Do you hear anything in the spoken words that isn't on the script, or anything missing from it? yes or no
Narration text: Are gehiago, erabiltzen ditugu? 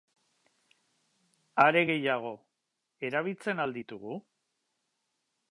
yes